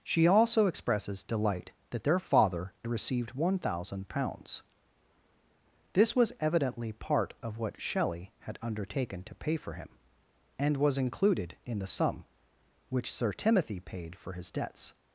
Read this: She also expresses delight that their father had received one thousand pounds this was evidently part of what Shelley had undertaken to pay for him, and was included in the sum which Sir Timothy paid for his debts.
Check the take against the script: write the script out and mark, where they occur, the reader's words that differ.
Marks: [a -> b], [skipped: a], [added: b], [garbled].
She also expresses delight that their father [skipped: had] received one thousand pounds this was evidently part of what Shelley had undertaken to pay for him, and was included in the sum which Sir Timothy paid for his debts.